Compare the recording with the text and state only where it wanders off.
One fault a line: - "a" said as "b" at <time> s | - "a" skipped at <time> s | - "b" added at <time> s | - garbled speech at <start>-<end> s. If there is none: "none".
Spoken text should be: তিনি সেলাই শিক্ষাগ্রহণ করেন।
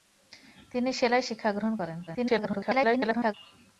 - garbled speech at 2.1-3.3 s